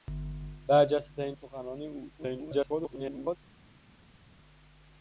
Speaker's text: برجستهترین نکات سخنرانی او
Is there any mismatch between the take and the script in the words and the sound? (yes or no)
yes